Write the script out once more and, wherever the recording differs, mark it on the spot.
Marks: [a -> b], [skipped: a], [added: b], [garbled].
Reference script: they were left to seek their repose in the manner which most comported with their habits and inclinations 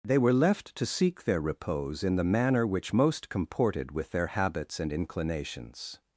they were left to seek their repose in the manner which most comported with their habits and inclinations